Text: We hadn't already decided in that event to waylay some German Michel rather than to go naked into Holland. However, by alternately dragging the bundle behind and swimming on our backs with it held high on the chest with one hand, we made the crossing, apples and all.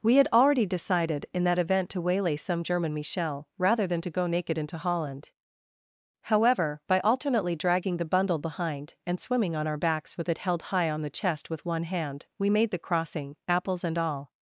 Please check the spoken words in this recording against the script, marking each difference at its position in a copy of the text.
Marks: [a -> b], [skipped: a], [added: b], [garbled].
We [hadn't -> had] already decided in that event to waylay some German Michel rather than to go naked into Holland. However, by alternately dragging the bundle behind and swimming on our backs with it held high on the chest with one hand, we made the crossing, apples and all.